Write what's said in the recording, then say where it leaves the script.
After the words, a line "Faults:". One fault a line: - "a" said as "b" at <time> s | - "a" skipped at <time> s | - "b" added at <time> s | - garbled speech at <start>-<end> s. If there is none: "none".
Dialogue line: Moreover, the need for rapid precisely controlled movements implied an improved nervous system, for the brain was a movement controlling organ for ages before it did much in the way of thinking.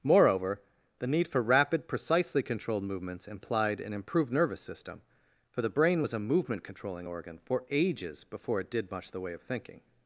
Moreover, the need for rapid precisely controlled movements implied an improved nervous system, for the brain was a movement controlling organ for ages before it did much the way of thinking.
Faults:
- "in" skipped at 9.1 s